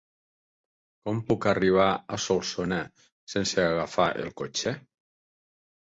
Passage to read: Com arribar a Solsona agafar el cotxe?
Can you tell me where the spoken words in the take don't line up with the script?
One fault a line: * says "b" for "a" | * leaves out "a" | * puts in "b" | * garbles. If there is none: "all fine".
* puts in "puc"
* puts in "sense"